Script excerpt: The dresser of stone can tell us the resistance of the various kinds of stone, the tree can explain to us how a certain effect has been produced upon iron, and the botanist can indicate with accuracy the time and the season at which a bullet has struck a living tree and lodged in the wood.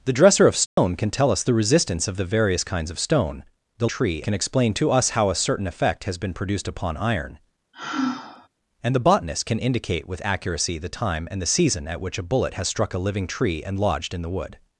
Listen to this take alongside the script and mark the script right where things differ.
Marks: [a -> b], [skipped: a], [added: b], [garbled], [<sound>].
The dresser of stone [dropout] can tell us the resistance of the various kinds of stone, the tree can explain to us how a certain effect has been produced upon iron, [sigh] and the botanist can indicate with accuracy the time and the season at which a bullet has struck a living tree and lodged in the wood.